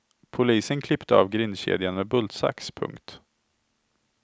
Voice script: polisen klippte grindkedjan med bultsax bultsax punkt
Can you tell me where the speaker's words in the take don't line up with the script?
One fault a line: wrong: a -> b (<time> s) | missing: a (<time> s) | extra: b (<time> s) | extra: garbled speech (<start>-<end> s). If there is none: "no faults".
extra: av (1.1 s)
missing: bultsax (2.7 s)